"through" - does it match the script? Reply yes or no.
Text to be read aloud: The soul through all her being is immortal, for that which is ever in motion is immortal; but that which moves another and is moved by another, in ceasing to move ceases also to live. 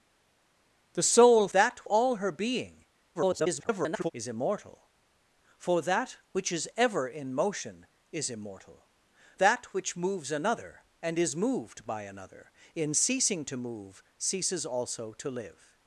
no